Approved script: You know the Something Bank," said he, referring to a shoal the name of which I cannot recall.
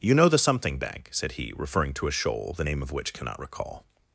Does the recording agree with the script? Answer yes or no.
no